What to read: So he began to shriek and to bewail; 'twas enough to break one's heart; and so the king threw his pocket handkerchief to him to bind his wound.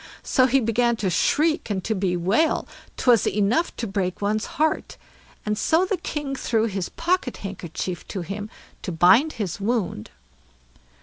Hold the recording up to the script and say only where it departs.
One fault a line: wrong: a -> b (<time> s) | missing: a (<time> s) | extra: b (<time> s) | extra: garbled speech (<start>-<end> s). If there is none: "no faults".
no faults